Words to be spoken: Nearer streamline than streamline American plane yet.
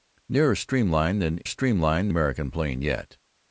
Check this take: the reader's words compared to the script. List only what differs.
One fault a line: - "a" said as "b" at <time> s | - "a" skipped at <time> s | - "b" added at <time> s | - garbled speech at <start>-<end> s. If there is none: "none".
none